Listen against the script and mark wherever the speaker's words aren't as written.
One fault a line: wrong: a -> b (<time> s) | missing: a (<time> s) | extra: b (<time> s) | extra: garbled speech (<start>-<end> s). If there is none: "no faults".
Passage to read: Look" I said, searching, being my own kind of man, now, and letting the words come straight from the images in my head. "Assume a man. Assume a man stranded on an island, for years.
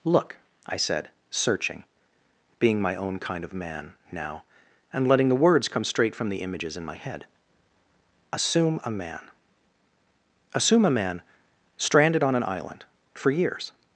no faults